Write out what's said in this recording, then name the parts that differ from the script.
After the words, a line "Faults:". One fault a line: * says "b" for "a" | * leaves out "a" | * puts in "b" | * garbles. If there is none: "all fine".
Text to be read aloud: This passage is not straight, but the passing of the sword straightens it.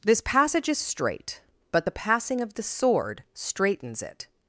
This passage is straight, but the passing of the sword straightens it.
Faults:
* leaves out "not"